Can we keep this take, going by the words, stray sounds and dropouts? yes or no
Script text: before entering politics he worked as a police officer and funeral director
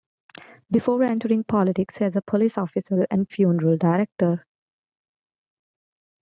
no